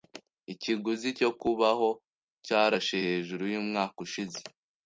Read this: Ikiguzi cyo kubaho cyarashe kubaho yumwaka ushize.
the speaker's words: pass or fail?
fail